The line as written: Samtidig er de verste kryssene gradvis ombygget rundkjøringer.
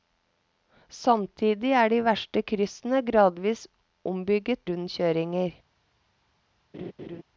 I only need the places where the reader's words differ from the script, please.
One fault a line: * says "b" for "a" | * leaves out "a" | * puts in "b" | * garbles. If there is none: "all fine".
all fine